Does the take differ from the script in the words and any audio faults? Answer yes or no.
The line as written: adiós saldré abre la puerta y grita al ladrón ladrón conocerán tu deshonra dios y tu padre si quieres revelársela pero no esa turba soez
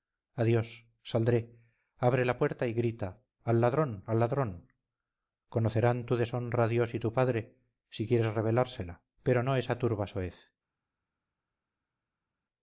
yes